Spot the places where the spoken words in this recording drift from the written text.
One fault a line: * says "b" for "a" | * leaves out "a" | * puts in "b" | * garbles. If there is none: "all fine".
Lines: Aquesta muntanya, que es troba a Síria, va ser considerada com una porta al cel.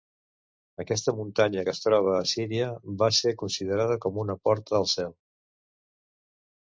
all fine